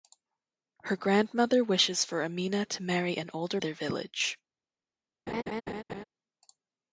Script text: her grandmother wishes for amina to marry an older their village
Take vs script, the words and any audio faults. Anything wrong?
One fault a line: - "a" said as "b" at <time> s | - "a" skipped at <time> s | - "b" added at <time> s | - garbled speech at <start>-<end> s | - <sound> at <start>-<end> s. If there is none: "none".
- laugh at 5.3-6.0 s